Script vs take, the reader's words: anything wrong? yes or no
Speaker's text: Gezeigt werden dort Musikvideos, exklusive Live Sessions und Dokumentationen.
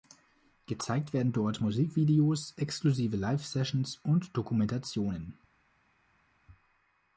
no